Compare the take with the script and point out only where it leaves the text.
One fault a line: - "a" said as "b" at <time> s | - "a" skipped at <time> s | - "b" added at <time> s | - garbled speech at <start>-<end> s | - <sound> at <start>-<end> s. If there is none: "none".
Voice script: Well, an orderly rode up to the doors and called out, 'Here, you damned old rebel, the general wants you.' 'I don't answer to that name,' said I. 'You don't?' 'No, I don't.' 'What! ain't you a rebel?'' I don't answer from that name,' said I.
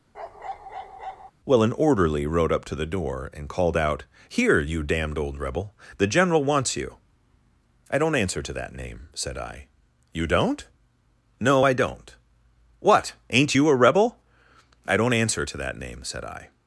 - bark at 0.1-1.3 s
- "doors" said as "door" at 2.8 s
- "from" said as "to" at 15.5 s